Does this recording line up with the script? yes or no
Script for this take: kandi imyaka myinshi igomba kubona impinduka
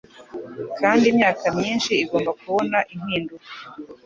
yes